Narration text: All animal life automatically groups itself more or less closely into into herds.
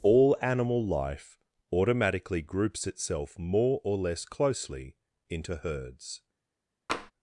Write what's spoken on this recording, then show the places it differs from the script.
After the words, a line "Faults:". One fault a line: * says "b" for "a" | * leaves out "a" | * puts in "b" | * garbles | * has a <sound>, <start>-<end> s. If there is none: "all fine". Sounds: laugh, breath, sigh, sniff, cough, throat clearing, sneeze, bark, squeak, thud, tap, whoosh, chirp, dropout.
All animal life automatically groups itself more or less closely into herds.
Faults:
* leaves out "into"
* has a tap, 6.9-7.1 s